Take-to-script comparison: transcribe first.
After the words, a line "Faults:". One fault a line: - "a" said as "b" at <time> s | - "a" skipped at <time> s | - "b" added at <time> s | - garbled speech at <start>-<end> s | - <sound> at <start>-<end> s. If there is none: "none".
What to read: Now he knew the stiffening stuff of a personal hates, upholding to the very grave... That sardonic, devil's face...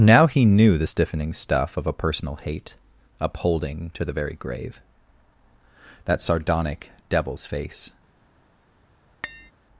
Now he knew the stiffening stuff of a personal hate, upholding to the very grave... That sardonic, devil's face...
Faults:
- "hates" said as "hate" at 2.4 s
- tap at 9.2-9.5 s